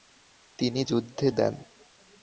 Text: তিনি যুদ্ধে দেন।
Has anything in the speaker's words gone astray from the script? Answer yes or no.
no